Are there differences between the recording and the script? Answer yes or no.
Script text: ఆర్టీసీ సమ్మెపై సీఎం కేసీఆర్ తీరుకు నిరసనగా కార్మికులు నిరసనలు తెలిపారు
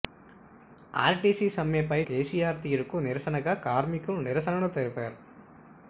yes